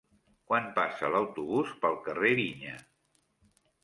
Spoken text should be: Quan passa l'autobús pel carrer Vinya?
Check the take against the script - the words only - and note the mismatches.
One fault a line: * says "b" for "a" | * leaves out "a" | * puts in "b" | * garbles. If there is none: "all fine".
all fine